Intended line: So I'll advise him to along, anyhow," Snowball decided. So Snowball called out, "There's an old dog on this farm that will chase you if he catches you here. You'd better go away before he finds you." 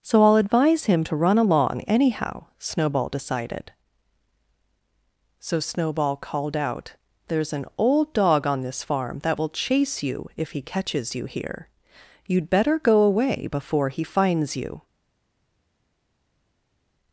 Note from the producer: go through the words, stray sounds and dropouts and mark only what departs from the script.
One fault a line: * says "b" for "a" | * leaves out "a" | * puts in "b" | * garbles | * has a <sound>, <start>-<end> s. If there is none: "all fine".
* puts in "run"